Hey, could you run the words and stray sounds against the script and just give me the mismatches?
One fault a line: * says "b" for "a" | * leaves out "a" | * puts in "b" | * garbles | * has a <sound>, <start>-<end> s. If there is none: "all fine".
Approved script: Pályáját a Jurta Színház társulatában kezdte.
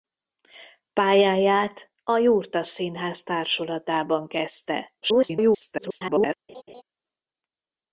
* garbles
* has a laugh, 6.5-6.8 s